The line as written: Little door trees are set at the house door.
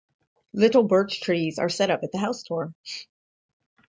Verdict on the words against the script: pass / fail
fail